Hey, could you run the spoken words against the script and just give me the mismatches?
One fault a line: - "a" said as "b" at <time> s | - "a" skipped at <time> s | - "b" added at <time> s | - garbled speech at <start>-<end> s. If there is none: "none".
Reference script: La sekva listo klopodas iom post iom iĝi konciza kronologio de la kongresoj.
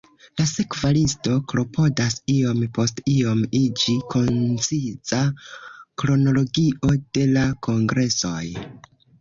none